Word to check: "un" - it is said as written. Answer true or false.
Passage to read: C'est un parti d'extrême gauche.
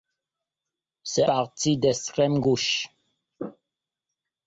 false